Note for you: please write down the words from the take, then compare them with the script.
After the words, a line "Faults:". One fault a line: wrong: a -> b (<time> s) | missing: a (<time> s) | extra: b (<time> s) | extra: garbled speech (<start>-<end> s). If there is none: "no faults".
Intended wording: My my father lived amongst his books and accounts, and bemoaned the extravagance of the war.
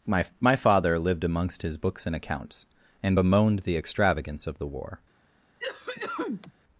My my father lived amongst his books and accounts, and bemoaned the extravagance of the war.
Faults:
no faults